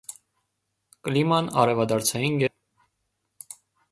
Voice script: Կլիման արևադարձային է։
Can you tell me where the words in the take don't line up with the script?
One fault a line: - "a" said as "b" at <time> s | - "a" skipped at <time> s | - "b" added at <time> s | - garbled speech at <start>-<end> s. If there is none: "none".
none